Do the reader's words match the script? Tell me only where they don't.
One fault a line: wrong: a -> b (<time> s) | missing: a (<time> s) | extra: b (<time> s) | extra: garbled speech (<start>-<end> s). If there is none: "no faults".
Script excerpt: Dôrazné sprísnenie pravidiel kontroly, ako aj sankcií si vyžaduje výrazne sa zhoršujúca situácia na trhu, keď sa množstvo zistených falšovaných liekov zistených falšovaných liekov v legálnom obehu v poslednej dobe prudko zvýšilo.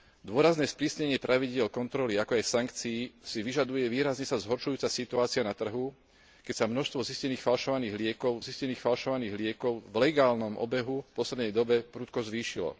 no faults